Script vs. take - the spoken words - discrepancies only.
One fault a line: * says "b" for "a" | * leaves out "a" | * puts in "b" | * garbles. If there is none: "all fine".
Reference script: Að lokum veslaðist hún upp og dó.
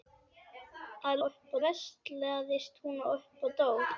* says "upp" for "lokum"